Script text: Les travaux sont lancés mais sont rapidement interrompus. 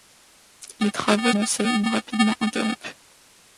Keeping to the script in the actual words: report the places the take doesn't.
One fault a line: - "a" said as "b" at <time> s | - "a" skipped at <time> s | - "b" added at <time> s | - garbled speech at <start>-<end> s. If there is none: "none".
- "sont" skipped at 1.3 s
- "sont" skipped at 1.8 s